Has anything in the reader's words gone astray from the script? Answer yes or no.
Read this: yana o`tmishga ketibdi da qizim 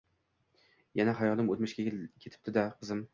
yes